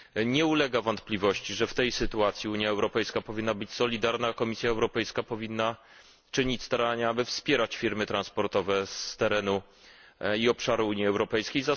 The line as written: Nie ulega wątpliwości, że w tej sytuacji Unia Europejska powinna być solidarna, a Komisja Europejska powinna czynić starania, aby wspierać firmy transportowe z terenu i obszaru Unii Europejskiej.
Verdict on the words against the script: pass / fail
pass